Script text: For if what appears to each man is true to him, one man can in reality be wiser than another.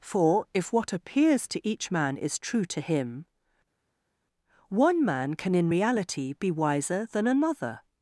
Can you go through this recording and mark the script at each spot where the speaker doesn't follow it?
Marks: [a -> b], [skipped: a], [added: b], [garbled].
For if what appears to each man is true to him, one man can in reality be wiser than another.